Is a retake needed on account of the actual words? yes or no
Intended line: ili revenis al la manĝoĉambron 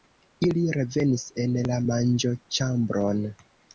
yes